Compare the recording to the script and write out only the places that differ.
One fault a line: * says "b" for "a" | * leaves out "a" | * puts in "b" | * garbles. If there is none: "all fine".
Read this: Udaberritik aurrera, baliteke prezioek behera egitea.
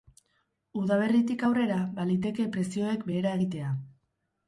all fine